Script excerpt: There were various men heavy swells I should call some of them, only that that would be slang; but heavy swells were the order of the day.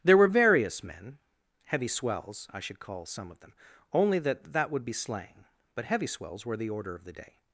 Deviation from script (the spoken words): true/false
false